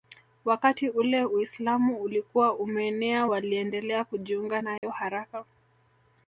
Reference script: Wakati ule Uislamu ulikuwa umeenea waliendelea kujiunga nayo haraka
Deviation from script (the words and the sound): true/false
true